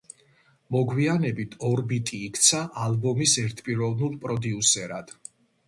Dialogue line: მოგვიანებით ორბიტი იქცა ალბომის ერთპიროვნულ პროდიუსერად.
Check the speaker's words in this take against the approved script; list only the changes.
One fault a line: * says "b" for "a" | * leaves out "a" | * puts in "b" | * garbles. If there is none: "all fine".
all fine